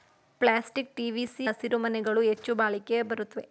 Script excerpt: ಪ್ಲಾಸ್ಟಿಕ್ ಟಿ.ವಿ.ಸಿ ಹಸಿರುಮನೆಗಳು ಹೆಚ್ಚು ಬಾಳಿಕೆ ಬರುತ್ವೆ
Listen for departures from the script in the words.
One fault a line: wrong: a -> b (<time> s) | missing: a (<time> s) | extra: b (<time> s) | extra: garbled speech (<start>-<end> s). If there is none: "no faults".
no faults